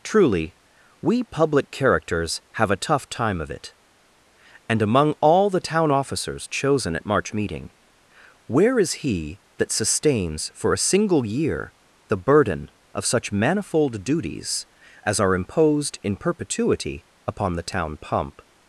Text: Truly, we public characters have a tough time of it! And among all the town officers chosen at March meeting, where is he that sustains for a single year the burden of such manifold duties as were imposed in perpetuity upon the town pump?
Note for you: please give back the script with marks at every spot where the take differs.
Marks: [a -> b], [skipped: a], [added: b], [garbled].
Truly, we public characters have a tough time of it! And among all the town officers chosen at March meeting, where is he that sustains for a single year the burden of such manifold duties as [were -> are] imposed in perpetuity upon the town pump?